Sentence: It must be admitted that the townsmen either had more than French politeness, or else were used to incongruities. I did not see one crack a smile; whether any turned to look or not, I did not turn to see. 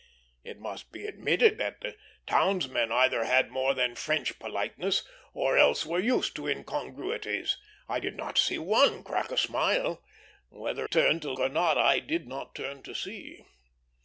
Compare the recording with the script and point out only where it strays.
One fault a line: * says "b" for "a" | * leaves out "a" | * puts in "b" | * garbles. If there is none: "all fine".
* leaves out "any"
* leaves out "look"